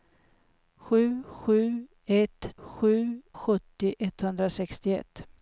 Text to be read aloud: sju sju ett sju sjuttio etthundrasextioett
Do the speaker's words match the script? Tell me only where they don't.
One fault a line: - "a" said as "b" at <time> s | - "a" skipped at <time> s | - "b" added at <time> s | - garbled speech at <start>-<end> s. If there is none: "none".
none